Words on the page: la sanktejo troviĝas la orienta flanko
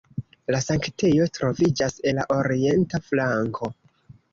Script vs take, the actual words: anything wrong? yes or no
no